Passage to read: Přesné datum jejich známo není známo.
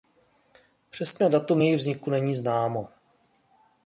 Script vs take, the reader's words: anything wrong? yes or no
yes